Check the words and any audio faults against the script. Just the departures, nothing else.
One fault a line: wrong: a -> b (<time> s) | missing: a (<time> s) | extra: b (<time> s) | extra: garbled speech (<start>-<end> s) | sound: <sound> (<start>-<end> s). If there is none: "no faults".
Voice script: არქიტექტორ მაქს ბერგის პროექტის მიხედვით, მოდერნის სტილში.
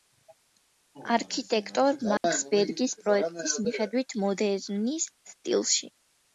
sound: dropout (2.2-2.2 s)